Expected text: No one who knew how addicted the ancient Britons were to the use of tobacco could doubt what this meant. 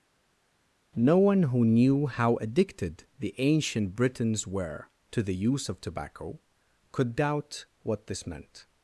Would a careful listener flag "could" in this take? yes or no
no